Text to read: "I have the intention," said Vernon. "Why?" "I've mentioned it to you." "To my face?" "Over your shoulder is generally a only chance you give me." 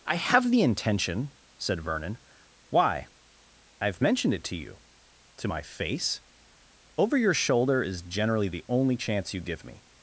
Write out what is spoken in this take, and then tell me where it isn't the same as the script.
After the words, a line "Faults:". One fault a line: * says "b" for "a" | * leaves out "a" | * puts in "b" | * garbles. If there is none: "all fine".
"I have the intention," said Vernon. "Why?" "I've mentioned it to you." "To my face?" "Over your shoulder is generally the only chance you give me."
Faults:
* says "the" for "a"